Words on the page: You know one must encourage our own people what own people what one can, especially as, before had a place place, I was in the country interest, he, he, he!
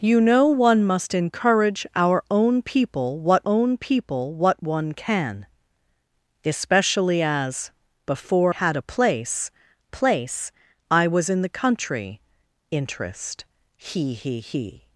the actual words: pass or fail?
pass